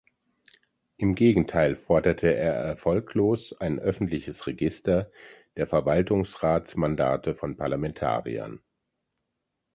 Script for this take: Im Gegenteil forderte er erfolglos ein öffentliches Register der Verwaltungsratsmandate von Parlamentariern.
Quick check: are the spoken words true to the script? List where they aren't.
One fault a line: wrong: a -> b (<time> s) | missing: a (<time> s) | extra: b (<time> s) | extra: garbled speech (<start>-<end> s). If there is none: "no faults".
no faults